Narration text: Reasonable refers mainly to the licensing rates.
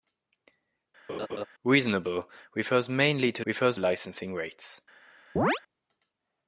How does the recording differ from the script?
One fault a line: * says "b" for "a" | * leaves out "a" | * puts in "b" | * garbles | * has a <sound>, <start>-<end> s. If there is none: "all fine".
* has a laugh, 1.1-1.5 s
* says "refers" for "the"
* has a chirp, 5.4-5.6 s